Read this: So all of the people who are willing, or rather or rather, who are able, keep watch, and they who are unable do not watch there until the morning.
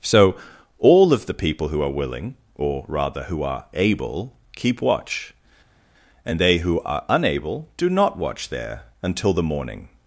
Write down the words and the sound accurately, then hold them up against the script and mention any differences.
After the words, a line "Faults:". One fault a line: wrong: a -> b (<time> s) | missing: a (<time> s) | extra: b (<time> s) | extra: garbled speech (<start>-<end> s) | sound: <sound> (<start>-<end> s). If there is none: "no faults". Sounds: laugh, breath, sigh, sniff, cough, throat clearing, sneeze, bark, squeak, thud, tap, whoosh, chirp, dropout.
So all of the people who are willing, or rather, who are able, keep watch, and they who are unable do not watch there until the morning.
Faults:
missing: or rather (3.2 s)